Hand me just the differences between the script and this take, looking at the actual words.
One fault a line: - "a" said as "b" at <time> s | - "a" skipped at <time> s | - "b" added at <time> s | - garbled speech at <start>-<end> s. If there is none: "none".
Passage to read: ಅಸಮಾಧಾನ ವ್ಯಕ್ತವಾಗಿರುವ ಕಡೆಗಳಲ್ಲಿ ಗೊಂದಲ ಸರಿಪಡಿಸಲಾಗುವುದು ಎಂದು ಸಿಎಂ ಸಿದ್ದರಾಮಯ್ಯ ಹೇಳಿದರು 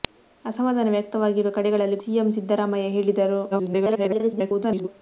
- "ಗೊಂದಲ ಸರಿಪಡಿಸಲಾಗುವುದು ಎಂದು" skipped at 2.0 s
- garbled speech at 3.5-4.9 s